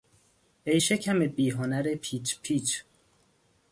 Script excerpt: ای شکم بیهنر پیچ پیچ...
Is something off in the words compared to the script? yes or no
no